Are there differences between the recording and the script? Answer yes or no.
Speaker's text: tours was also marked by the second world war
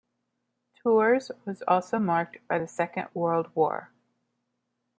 no